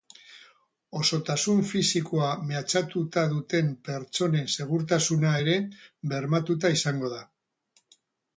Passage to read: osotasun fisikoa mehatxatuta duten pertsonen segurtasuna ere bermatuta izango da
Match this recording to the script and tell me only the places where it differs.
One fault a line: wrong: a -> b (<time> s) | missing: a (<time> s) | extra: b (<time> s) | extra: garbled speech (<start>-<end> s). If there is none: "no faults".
no faults